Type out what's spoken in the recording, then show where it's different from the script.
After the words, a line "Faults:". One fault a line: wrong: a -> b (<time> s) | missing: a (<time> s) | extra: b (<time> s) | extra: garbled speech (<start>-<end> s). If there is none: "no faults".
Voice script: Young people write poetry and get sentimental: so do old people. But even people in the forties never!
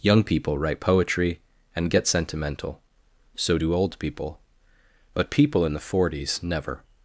Young people write poetry and get sentimental: so do old people. But people in the forties never!
Faults:
missing: even (5.3 s)